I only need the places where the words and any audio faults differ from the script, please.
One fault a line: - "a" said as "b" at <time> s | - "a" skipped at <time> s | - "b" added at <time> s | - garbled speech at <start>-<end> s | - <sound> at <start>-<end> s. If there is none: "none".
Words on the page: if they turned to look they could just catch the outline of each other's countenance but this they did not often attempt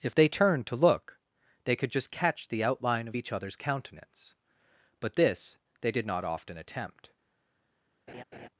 - laugh at 8.1-8.5 s